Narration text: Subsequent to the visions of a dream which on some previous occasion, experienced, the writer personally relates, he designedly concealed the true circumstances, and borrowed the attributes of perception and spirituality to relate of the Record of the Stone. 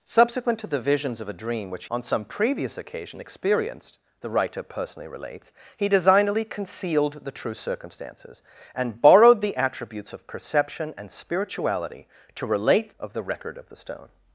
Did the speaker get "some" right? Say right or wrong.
right